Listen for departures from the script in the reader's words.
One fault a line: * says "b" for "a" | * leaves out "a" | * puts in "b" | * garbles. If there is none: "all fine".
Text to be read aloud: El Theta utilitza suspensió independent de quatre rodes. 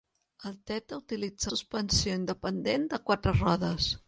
all fine